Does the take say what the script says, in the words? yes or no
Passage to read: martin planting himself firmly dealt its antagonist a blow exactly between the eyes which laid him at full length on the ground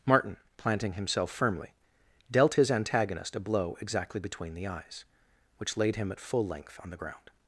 no